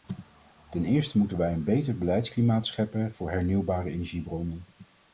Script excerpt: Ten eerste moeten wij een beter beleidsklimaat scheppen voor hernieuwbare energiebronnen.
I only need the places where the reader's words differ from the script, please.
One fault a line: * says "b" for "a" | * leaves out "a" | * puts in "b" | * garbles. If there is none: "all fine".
all fine